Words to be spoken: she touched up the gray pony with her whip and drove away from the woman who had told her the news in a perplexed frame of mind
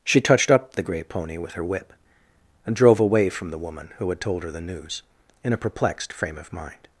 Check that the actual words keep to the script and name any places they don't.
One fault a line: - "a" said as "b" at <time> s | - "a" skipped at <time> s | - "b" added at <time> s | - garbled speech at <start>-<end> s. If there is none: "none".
none